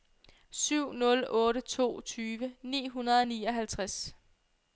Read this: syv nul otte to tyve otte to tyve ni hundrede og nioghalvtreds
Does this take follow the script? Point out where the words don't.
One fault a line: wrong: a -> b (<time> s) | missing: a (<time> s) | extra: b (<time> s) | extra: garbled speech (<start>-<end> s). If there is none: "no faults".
missing: otte to tyve (2.5 s)